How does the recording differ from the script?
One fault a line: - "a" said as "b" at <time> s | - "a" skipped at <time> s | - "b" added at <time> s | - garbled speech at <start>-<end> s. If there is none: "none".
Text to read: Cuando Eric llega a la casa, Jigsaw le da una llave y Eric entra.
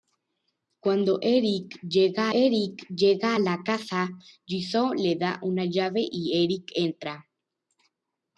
- "Eric llega" added at 2.3 s